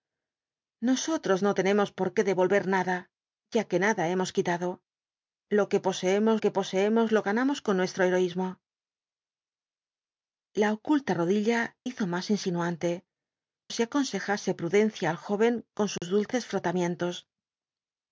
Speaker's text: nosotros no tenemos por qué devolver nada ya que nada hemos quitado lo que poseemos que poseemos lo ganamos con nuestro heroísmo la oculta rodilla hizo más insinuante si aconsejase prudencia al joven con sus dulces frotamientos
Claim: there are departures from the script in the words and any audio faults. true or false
true